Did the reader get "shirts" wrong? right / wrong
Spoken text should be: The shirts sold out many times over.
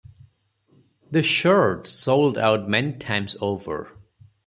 right